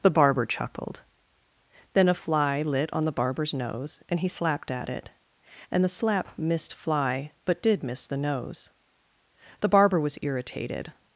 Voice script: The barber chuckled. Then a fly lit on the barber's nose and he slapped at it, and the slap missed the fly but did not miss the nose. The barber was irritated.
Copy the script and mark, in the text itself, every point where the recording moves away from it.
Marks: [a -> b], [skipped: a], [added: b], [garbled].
The barber chuckled. Then a fly lit on the barber's nose and he slapped at it, and the slap missed [skipped: the] fly but did [skipped: not] miss the nose. The barber was irritated.